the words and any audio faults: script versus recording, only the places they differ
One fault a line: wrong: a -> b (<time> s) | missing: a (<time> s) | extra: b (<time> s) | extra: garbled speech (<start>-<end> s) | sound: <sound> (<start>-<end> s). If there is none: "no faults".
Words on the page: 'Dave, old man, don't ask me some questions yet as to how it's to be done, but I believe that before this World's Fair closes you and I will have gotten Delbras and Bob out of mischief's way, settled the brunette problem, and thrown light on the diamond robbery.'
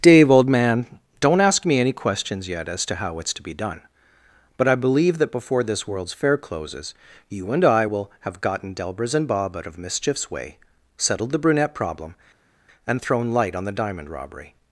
wrong: some -> any (1.8 s)